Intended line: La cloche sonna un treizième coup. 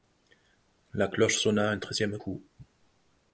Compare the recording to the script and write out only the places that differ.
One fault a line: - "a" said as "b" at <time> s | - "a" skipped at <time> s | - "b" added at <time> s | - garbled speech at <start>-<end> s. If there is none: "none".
none